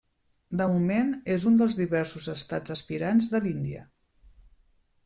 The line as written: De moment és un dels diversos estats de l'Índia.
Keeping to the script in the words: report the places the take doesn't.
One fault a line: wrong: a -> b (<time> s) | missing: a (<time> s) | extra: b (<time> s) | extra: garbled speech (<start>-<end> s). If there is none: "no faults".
extra: aspirants (2.7 s)